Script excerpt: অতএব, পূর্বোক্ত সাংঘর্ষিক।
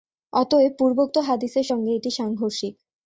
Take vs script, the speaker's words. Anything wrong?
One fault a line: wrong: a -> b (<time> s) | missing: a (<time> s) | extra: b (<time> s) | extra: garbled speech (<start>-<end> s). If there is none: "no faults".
extra: হাদীসের সঙ্গে এটি (1.3 s)